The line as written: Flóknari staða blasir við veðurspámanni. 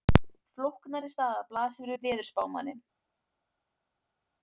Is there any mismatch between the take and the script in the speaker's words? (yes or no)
no